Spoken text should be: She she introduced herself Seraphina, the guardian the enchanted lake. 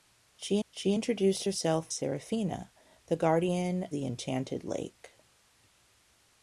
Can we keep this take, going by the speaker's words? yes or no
yes